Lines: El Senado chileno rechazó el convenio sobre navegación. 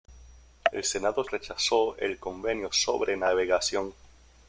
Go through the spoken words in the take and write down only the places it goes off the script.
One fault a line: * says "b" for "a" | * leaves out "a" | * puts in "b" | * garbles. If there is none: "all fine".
* leaves out "chileno"